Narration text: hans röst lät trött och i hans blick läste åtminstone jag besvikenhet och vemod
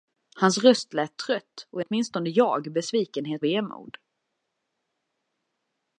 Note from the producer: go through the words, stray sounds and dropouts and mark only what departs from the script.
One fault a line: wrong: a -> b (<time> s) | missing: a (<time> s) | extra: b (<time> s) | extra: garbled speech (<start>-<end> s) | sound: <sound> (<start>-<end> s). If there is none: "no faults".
missing: hans blick läste (1.9 s)
missing: och (3.4 s)